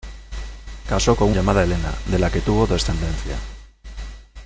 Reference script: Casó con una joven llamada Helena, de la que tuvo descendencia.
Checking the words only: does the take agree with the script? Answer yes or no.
no